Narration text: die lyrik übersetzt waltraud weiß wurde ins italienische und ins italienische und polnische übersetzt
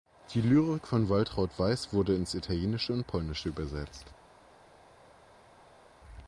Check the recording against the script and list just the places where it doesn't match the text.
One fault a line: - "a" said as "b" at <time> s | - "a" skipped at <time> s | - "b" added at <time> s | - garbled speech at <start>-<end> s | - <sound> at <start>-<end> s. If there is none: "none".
- "übersetzt" said as "von" at 0.9 s
- "ins italienische und" skipped at 3.0 s